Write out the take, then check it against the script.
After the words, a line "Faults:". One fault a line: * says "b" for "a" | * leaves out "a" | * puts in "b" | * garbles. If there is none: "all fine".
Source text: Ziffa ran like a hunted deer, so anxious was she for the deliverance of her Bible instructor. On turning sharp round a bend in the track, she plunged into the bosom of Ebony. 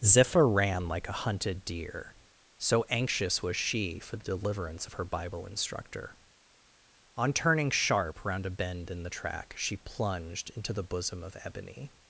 Ziffa ran like a hunted deer, so anxious was she for the deliverance of her Bible instructor. On turning sharp round a bend in the track, she plunged into the bosom of Ebony.
Faults:
all fine